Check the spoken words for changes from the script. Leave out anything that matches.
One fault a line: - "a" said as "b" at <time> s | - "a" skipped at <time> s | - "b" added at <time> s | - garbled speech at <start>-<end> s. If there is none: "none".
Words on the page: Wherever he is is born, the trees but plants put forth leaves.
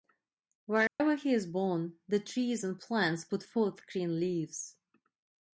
- "is" skipped at 1.5 s
- "but" said as "and" at 2.6 s
- "green" added at 3.9 s